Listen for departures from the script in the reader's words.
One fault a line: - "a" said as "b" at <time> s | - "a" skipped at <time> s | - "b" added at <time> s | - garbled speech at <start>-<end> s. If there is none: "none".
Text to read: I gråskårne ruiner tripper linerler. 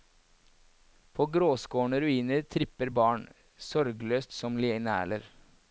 - "I" said as "På" at 1.1 s
- "barn sorgløst som" added at 2.9 s